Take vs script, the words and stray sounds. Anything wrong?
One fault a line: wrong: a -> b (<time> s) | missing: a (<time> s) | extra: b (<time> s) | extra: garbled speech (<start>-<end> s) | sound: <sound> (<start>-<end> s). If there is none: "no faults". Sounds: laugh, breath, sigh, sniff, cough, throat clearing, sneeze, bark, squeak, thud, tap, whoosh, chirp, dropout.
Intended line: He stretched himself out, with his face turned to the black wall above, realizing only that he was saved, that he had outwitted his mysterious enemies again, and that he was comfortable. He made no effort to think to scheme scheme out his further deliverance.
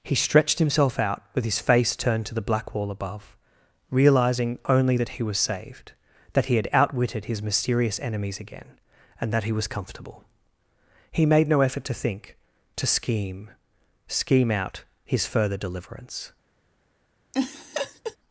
sound: laugh (17.3-18.2 s)